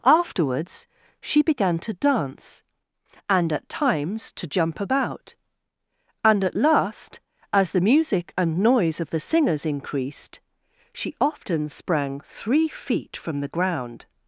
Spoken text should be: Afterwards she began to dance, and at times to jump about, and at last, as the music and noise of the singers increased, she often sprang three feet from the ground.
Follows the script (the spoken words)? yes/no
yes